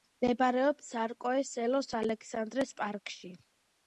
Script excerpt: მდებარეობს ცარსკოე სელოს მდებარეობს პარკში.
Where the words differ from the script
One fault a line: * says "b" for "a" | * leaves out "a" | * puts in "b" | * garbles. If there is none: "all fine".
* says "ალექსანდრეს" for "მდებარეობს"